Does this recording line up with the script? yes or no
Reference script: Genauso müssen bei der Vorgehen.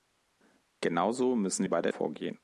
yes